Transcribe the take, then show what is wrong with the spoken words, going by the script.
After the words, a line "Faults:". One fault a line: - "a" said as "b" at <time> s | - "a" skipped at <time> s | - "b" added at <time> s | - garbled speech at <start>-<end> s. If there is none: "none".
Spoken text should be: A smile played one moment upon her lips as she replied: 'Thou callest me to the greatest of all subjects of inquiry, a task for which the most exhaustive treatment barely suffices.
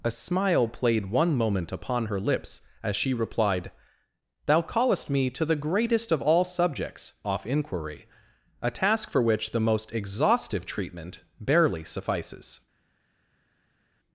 A smile played one moment upon her lips as she replied: 'Thou callest me to the greatest of all subjects off inquiry, a task for which the most exhaustive treatment barely suffices.
Faults:
- "of" said as "off" at 7.2 s